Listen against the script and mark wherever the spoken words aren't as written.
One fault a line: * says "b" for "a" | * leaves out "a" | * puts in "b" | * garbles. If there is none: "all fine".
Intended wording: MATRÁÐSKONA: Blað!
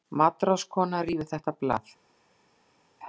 * puts in "Rífið þetta"